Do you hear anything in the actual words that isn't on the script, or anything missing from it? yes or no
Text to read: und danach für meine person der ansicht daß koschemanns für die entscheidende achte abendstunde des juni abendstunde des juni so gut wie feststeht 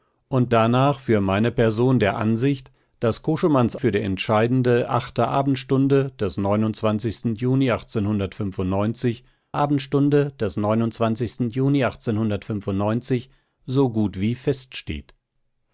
no